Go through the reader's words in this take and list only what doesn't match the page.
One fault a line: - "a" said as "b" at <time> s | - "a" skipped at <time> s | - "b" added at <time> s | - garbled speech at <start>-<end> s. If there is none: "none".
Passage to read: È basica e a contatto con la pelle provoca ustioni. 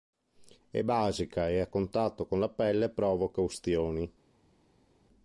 none